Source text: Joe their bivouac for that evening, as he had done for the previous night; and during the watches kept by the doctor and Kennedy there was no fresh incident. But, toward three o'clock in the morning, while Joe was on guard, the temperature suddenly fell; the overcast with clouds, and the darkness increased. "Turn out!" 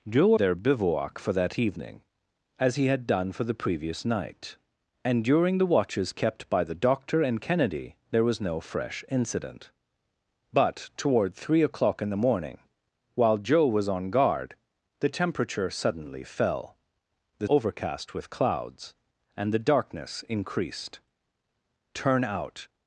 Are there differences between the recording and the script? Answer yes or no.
no